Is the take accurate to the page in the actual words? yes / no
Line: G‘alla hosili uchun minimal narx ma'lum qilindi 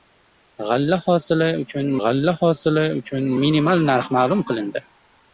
no